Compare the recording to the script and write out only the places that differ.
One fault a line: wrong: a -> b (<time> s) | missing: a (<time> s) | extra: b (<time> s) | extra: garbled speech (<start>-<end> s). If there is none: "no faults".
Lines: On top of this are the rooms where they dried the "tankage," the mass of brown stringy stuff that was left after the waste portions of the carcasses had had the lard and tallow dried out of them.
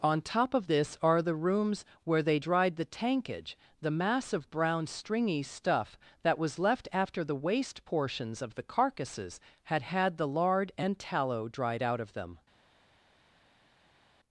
no faults